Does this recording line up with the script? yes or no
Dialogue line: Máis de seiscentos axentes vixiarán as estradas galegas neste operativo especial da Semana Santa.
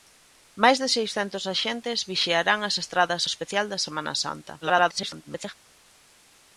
no